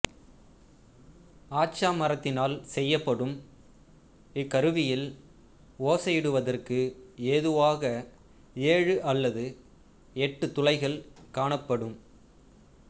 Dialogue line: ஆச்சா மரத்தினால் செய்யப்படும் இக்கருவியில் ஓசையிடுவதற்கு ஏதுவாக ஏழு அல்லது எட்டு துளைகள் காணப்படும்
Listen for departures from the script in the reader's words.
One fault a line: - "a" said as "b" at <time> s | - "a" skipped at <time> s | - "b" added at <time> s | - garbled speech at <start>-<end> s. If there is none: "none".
none